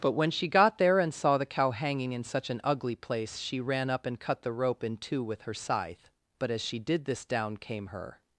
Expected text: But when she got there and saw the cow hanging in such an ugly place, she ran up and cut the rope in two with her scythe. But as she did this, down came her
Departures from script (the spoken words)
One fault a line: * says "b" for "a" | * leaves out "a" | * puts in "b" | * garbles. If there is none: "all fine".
all fine